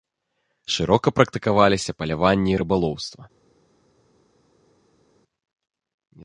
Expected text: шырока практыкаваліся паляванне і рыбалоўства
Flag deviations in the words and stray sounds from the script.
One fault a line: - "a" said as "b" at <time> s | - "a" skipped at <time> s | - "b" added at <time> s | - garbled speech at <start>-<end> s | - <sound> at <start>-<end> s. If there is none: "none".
none